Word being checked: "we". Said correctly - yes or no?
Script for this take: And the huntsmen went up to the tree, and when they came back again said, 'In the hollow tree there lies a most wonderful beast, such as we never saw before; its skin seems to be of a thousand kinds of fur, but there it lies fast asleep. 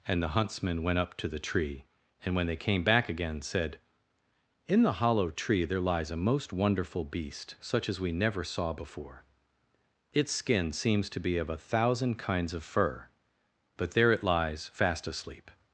yes